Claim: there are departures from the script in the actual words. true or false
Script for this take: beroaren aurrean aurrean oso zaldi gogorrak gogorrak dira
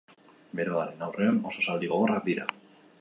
true